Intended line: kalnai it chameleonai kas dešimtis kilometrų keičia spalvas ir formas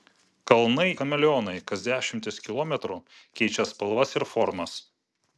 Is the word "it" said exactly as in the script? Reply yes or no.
no